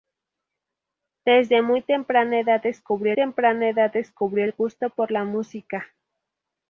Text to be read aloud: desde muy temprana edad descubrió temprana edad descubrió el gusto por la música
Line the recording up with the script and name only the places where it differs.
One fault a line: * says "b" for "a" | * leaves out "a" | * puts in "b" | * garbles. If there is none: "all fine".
all fine